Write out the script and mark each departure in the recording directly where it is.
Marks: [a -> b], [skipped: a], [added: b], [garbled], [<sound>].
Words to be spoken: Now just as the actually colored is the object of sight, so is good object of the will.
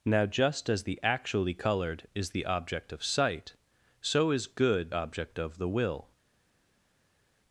Now just as the actually colored is the object of sight, so is good object of the will.